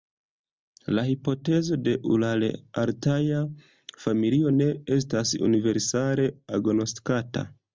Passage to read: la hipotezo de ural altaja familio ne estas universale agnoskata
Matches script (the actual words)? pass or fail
pass